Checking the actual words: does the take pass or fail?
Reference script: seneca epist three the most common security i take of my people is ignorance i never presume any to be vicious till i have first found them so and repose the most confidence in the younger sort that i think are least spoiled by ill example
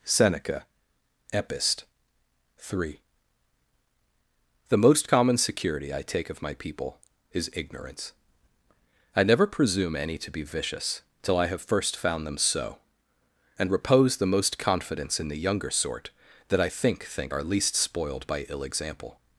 fail